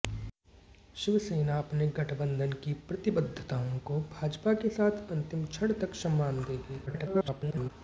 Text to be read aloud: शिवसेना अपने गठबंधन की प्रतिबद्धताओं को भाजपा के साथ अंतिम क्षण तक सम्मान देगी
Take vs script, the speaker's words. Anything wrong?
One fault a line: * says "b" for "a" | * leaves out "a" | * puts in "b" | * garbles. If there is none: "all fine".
* garbles